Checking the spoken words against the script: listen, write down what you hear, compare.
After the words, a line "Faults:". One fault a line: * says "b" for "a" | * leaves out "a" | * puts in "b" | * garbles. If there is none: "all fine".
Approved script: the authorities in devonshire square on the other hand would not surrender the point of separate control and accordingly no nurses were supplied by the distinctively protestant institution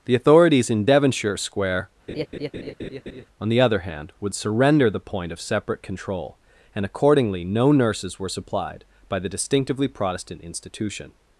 the authorities in devonshire square on the other hand would surrender the point of separate control and accordingly no nurses were supplied by the distinctively protestant institution
Faults:
* leaves out "not"